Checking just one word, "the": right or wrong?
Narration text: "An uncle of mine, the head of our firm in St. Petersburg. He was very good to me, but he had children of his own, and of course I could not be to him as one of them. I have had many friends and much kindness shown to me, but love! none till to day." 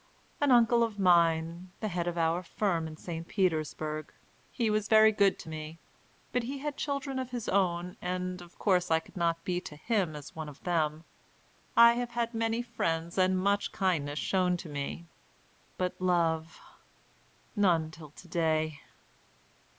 right